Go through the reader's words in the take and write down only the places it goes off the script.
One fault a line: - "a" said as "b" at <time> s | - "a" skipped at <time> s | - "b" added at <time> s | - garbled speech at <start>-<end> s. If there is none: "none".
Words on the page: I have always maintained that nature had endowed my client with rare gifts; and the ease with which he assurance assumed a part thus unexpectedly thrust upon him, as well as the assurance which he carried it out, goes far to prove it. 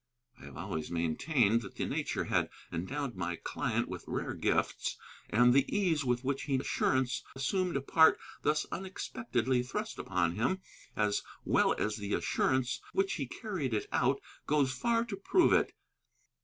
none